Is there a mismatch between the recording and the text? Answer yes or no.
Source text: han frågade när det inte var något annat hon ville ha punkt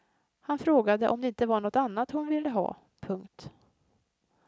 yes